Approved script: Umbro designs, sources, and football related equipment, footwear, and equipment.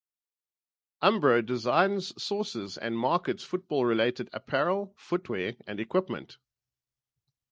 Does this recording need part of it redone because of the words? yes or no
yes